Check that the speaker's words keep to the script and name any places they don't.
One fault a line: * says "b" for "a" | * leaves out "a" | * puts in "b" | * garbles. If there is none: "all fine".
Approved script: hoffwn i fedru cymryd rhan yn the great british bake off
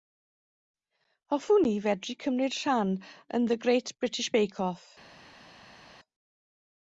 all fine